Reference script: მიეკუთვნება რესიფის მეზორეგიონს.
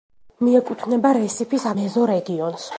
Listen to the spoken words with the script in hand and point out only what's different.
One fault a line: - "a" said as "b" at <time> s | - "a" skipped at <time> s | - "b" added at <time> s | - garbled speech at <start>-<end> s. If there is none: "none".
none